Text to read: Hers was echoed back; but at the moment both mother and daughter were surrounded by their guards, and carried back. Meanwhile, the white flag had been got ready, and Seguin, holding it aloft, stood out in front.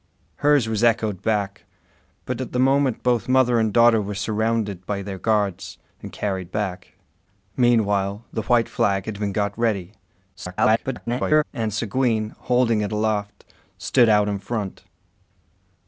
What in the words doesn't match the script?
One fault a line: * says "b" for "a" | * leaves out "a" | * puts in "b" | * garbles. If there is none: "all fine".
* garbles